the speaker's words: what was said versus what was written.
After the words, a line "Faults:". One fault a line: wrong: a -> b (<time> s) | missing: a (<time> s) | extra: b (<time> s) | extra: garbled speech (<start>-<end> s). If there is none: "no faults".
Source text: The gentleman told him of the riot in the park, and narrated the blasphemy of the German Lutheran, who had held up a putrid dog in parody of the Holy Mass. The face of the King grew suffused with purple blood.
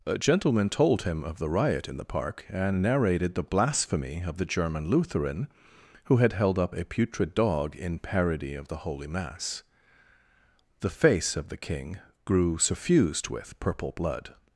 A gentleman told him of the riot in the park, and narrated the blasphemy of the German Lutheran, who had held up a putrid dog in parody of the Holy Mass. The face of the King grew suffused with purple blood.
Faults:
wrong: The -> A (0.1 s)